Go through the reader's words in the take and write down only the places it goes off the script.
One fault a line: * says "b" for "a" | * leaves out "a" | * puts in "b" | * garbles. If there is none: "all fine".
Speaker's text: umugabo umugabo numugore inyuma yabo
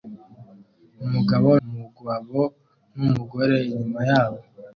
all fine